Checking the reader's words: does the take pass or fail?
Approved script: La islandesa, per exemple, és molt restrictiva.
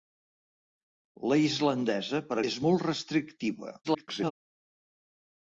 fail